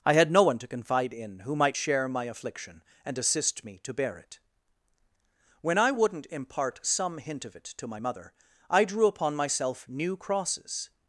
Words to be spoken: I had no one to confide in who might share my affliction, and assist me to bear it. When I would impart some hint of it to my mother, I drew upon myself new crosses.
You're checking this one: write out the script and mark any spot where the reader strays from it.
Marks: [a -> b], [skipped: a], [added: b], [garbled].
I had no one to confide in who might share my affliction, and assist me to bear it. When I [would -> wouldn't] impart some hint of it to my mother, I drew upon myself new crosses.